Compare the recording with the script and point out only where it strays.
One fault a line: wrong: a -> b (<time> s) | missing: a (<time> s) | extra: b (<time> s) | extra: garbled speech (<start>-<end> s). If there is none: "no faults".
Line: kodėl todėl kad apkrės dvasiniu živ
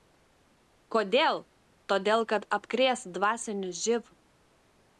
no faults